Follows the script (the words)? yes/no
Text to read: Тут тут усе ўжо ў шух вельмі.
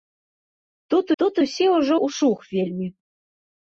yes